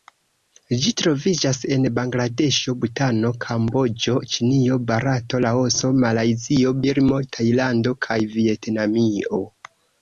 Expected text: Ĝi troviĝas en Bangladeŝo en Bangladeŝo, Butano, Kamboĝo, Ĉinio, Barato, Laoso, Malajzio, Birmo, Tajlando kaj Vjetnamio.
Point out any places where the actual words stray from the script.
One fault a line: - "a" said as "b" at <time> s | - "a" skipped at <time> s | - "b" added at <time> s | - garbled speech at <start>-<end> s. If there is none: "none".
- "en Bangladeŝo" skipped at 2.8 s